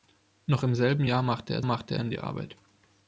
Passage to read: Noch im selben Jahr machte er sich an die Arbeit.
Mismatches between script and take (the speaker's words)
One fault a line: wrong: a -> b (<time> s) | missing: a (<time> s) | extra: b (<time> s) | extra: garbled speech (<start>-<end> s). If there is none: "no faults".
wrong: sich -> machte (1.6 s)